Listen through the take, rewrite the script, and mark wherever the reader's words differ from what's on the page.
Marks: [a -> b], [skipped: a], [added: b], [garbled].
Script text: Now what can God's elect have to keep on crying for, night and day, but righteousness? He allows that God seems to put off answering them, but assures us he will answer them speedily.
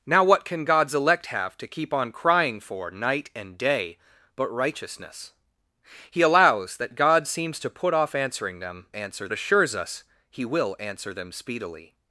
Now what can God's elect have to keep on crying for, night and day, but righteousness? He allows that God seems to put off answering them, [but -> answer] assures us he will answer them speedily.